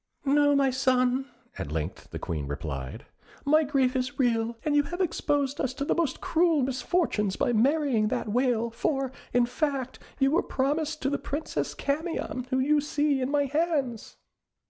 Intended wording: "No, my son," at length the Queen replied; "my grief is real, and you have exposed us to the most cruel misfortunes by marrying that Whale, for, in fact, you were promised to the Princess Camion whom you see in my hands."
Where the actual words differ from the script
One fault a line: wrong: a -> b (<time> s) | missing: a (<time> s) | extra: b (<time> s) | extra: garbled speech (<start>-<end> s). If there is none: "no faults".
no faults